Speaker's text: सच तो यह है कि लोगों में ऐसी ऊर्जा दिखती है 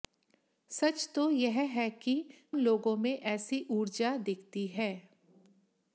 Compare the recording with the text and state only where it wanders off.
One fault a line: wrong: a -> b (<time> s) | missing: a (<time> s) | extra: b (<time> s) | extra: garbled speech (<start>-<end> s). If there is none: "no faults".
no faults